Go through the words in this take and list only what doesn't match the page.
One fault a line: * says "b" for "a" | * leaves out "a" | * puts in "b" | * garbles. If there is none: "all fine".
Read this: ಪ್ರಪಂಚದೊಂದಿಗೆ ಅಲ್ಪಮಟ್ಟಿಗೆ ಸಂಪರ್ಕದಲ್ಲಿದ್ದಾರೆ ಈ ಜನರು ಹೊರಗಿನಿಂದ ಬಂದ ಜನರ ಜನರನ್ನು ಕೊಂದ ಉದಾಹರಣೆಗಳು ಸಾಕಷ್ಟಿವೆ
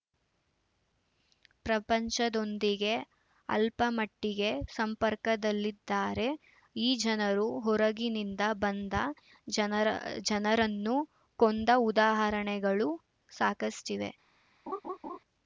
all fine